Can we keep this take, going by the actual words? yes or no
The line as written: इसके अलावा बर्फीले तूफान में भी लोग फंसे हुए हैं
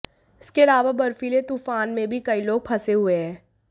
no